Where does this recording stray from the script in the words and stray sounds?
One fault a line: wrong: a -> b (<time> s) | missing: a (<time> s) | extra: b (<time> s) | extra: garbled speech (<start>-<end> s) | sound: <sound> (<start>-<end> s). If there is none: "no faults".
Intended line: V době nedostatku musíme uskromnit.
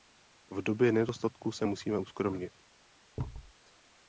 extra: se (1.5 s)
sound: thud (3.2-3.5 s)